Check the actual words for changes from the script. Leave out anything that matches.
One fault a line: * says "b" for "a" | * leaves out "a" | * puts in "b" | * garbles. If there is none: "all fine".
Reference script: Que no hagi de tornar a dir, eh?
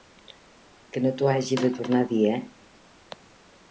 * puts in "t'ho"